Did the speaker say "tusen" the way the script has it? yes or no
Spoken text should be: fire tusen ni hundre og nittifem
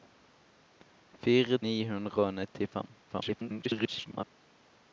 no